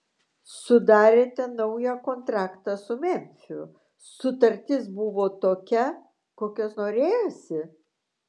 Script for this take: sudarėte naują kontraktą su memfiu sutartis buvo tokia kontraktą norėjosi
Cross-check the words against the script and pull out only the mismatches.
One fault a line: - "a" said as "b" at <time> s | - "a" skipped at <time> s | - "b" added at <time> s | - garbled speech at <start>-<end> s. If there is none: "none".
- "kontraktą" said as "kokios" at 6.4 s